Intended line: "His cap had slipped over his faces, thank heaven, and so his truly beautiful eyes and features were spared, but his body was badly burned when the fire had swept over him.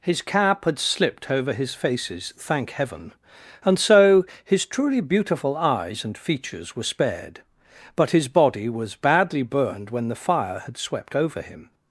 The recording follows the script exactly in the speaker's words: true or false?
true